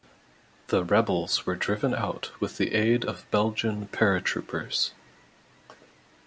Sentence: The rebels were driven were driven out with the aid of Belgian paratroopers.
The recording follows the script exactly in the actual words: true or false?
false